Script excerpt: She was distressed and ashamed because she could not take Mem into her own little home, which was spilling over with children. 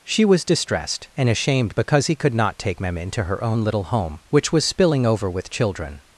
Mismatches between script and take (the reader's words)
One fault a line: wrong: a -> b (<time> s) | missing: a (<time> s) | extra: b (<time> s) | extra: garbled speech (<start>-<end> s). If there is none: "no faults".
wrong: she -> he (2.1 s)